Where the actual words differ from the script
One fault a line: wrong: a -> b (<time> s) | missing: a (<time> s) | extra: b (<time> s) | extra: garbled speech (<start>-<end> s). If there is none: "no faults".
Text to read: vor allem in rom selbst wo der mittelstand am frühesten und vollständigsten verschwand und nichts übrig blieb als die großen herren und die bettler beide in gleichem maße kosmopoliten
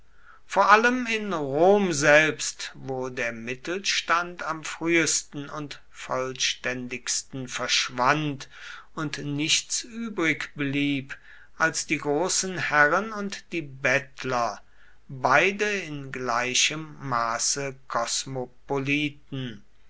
no faults